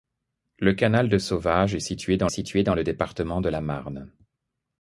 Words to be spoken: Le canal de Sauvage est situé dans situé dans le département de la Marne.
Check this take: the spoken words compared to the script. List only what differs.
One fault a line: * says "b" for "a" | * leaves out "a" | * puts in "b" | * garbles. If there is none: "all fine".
all fine